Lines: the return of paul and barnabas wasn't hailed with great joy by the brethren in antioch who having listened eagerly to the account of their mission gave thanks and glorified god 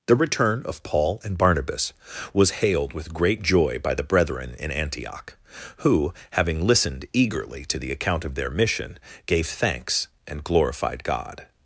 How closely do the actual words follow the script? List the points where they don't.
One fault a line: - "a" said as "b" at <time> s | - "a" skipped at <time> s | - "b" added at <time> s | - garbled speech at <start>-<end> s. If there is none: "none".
- "wasn't" said as "was" at 2.3 s